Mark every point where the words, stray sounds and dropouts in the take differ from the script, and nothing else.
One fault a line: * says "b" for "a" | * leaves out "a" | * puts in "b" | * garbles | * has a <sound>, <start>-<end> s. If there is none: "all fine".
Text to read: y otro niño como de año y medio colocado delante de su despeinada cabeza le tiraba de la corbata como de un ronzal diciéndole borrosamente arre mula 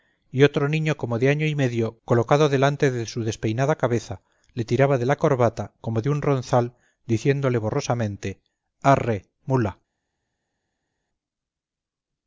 all fine